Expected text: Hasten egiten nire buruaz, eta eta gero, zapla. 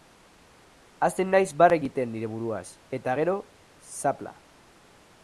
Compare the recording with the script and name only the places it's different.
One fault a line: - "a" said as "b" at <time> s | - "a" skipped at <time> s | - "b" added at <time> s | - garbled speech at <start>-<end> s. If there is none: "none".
- "naiz barre" added at 1.3 s
- "eta" skipped at 3.2 s